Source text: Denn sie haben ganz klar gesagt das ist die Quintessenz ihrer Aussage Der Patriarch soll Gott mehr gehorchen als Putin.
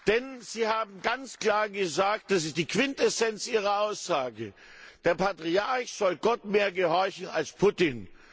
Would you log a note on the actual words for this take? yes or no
no